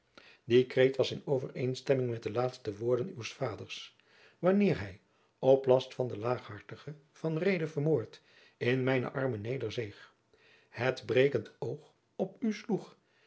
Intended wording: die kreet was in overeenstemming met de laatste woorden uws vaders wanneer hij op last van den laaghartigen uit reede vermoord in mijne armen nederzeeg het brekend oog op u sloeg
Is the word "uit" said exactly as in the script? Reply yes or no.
no